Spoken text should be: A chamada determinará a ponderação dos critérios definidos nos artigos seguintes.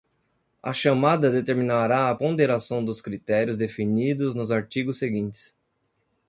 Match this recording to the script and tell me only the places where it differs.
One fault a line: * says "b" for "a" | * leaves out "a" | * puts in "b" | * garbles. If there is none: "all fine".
all fine